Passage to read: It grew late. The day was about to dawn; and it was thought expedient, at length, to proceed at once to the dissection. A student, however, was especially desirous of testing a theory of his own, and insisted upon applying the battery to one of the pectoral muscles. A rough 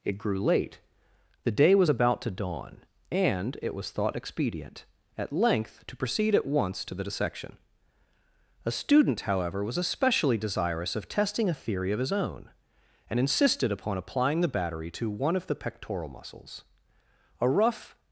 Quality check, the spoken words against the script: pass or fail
pass